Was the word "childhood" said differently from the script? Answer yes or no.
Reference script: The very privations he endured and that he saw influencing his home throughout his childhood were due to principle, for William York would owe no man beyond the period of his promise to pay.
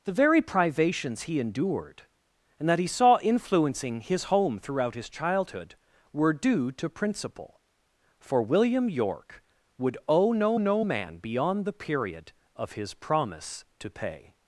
no